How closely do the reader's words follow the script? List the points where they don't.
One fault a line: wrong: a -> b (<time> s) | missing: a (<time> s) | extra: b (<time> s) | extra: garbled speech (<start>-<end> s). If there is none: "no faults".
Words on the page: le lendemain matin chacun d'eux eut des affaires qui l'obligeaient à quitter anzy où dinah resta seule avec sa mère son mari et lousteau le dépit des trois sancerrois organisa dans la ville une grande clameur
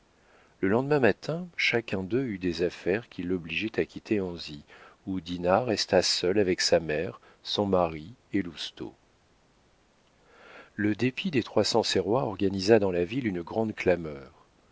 no faults